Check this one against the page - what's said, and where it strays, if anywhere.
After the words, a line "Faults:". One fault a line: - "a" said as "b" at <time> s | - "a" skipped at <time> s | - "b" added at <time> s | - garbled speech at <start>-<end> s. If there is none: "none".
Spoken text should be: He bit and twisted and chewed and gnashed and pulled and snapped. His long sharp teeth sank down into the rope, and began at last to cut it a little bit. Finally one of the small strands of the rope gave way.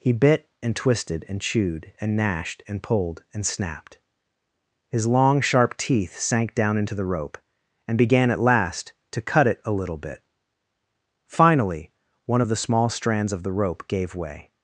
He bit and twisted and chewed and gnashed and pulled and snapped. His long sharp teeth sank down into the rope, and began at last to cut it a little bit. Finally one of the small strands of the rope gave way.
Faults:
none